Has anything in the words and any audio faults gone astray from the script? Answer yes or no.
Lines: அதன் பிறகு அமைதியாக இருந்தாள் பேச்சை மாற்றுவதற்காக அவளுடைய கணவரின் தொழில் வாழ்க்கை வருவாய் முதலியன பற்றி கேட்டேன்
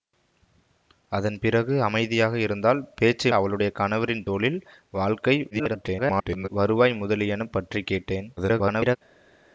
yes